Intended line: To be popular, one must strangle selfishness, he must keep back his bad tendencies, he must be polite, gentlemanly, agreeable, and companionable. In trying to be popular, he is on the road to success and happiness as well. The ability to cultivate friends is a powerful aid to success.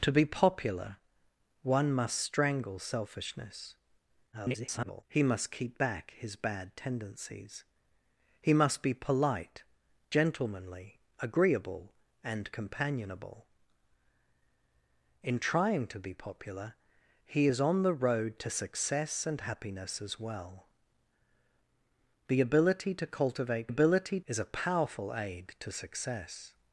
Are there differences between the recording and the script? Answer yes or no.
yes